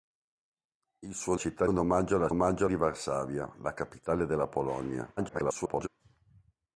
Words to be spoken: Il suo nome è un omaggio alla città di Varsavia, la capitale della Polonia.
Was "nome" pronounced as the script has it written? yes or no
no